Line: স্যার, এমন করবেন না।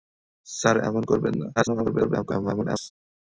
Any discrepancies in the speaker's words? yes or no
yes